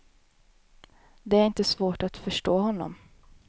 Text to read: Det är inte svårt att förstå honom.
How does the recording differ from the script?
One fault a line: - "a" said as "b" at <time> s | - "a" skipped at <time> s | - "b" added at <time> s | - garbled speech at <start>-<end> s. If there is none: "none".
none